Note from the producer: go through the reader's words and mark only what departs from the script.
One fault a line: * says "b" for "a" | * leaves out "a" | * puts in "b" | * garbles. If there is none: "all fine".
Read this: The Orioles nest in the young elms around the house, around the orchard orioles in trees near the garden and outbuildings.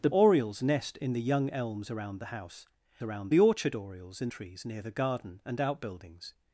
all fine